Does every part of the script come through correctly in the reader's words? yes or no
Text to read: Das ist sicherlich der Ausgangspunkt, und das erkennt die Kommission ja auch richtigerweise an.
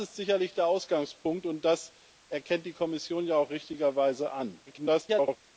no